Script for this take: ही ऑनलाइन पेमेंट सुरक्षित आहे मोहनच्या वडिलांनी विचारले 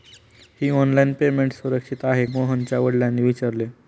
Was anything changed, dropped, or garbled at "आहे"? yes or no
no